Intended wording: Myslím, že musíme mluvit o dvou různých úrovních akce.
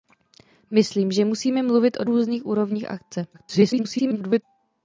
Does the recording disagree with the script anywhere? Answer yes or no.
yes